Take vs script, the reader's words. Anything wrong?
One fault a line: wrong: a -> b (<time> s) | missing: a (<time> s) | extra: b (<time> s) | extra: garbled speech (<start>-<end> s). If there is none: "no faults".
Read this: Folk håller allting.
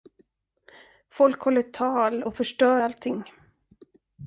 extra: tal och förstör (1.6 s)